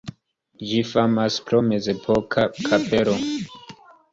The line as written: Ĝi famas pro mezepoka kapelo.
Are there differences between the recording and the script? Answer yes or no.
no